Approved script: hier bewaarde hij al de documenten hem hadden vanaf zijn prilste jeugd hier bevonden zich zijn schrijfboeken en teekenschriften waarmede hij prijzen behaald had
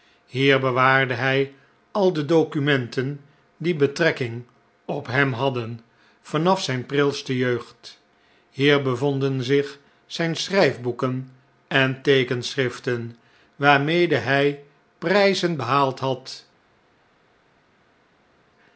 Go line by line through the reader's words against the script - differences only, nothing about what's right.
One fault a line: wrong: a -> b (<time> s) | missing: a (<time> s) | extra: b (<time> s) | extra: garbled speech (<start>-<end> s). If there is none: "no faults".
extra: die betrekking op (3.6 s)